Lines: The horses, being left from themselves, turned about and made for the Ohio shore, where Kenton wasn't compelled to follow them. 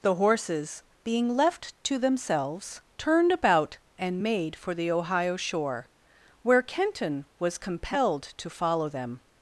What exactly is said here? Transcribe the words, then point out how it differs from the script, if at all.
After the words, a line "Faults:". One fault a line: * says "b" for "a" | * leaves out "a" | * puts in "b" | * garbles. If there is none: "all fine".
The horses, being left to themselves, turned about and made for the Ohio shore, where Kenton was compelled to follow them.
Faults:
* says "to" for "from"
* says "was" for "wasn't"